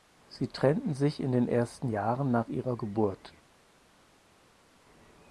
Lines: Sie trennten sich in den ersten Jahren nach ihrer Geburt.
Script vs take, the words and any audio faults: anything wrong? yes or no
no